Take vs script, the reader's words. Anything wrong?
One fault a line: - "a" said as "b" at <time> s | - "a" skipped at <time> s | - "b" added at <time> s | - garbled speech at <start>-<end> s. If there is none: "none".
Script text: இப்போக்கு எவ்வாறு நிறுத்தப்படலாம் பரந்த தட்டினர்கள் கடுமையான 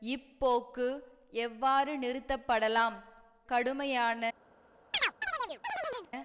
- "பரந்த தட்டினர்கள்" skipped at 3.0 s